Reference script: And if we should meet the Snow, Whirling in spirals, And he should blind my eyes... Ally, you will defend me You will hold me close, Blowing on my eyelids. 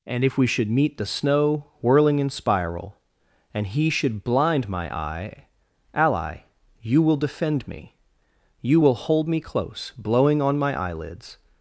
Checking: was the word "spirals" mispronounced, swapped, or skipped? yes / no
yes